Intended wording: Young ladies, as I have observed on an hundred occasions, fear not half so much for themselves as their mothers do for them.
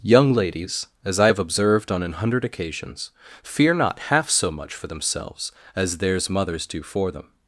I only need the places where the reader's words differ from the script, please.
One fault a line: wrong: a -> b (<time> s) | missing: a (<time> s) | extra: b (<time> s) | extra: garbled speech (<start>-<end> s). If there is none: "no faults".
wrong: their -> theirs (6.0 s)